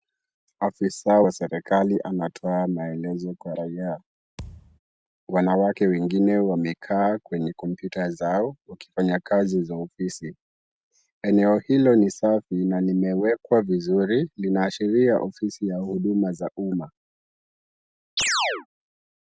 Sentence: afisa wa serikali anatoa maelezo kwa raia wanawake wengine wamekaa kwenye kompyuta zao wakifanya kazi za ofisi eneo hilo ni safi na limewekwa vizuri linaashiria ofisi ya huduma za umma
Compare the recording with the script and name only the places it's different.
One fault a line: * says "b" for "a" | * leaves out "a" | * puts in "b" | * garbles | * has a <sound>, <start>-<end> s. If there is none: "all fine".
* has a thud, 4.4-4.8 s
* has a chirp, 18.2-18.7 s